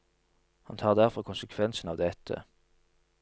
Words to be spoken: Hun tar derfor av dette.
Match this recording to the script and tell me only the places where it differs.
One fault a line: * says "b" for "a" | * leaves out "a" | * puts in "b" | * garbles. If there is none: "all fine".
* says "Han" for "Hun"
* puts in "konsekvensen"